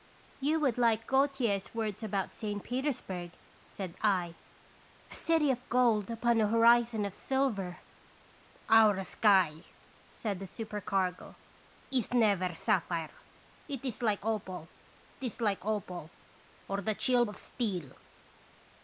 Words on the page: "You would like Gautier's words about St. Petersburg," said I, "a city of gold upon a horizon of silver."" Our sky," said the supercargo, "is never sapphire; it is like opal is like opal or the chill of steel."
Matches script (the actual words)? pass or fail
pass